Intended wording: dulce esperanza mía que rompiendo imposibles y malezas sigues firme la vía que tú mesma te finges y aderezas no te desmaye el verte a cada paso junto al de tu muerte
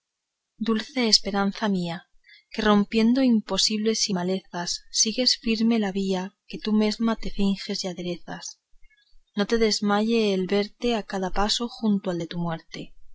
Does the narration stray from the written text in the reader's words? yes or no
no